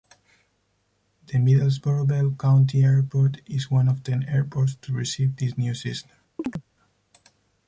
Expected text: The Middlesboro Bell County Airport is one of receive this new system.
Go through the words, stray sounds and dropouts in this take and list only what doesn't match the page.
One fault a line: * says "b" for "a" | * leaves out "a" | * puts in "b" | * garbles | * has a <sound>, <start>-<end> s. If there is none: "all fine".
* puts in "ten airports to"
* has a chirp, 6.4-6.6 s